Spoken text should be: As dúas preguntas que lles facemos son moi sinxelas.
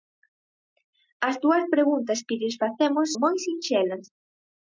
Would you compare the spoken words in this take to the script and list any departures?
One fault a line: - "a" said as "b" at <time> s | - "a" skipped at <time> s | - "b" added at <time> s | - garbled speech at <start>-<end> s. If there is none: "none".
- "son" skipped at 3.1 s